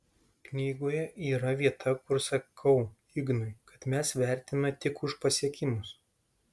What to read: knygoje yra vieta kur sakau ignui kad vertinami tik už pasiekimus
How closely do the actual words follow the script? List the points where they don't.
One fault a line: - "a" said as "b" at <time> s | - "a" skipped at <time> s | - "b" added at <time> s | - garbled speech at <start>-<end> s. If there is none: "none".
- "mes" added at 4.0 s